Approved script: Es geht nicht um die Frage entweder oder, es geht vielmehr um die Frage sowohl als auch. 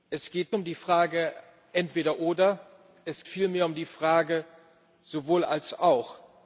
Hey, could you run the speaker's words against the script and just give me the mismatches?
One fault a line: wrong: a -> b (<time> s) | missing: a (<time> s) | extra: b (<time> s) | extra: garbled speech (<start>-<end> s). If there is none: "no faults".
missing: nicht (0.6 s)
missing: geht (3.2 s)